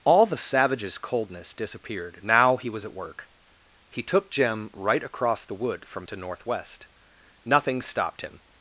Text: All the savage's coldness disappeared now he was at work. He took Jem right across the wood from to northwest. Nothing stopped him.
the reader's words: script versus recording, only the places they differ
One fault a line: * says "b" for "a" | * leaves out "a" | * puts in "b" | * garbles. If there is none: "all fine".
all fine